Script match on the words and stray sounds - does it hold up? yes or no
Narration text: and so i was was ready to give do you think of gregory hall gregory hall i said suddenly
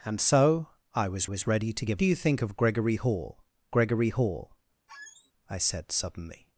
no